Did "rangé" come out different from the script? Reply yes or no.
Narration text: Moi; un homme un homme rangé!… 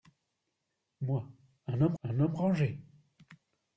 no